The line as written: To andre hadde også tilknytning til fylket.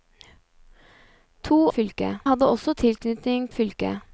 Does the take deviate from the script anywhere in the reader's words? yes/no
yes